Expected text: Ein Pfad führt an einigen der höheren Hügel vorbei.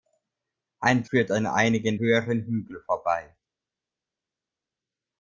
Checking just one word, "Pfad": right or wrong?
wrong